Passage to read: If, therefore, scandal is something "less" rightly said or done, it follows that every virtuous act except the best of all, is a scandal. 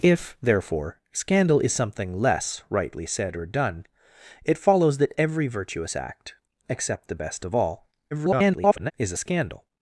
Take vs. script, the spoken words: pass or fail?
fail